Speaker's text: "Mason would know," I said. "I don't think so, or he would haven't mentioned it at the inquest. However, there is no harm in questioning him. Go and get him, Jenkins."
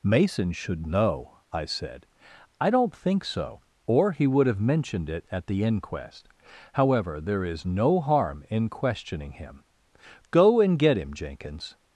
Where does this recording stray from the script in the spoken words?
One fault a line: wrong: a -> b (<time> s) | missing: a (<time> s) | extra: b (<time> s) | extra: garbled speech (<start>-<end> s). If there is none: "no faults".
wrong: would -> should (0.5 s)
wrong: haven't -> have (4.5 s)